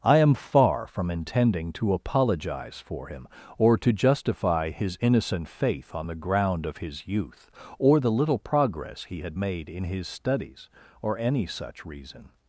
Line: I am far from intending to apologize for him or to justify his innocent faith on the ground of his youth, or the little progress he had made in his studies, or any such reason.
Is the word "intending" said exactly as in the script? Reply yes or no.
yes